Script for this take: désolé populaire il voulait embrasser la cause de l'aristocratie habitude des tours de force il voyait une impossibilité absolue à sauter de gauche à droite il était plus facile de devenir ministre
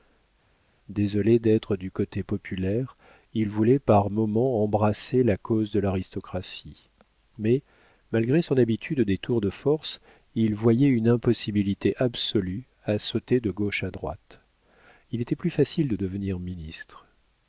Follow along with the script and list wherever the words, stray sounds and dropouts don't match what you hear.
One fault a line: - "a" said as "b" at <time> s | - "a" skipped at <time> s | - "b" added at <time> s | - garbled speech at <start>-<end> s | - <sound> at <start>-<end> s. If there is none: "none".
- "d'être du côté" added at 1.4 s
- "par moments" added at 3.8 s
- "mais malgré son" added at 7.4 s